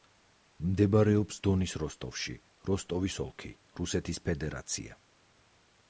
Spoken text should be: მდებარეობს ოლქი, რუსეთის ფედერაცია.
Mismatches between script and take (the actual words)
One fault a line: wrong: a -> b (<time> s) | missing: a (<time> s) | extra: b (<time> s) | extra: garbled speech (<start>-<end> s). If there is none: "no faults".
extra: დონის როსტოვში როსტოვის (1.5 s)